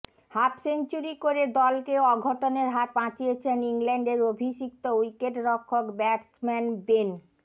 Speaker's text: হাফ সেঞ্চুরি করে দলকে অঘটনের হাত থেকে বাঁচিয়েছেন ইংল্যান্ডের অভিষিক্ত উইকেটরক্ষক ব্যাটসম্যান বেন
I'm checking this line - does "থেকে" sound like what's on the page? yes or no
no